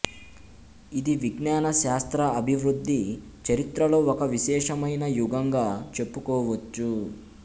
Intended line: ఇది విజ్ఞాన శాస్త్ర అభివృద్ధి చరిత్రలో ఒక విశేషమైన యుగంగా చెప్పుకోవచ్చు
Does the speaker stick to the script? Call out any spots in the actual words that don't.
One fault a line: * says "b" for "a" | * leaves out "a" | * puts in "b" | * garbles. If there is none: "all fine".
all fine